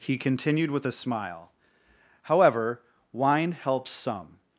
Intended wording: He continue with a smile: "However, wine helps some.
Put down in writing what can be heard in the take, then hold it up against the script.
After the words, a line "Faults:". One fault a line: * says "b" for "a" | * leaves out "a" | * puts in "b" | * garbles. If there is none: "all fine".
He continued with a smile: "However, wine helps some.
Faults:
* says "continued" for "continue"